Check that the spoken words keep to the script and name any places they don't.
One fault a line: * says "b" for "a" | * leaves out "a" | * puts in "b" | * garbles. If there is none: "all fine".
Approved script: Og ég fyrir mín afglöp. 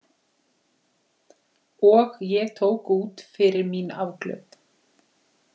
* puts in "tók út"